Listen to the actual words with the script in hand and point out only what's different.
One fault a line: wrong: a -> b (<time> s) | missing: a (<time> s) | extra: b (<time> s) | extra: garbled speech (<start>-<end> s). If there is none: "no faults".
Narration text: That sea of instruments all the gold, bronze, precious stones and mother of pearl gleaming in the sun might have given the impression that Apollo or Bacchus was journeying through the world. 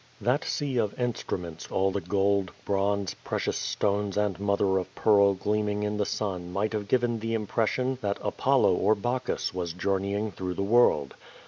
no faults